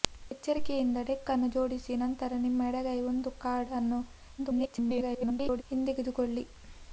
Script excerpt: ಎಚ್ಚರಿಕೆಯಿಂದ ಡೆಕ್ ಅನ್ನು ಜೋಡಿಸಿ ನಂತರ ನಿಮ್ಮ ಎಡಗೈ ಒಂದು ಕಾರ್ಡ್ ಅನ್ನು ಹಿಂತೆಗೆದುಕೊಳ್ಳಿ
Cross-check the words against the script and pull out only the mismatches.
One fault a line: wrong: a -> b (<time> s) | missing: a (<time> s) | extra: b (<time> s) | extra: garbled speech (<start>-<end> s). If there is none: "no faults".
extra: garbled speech (4.4-5.6 s)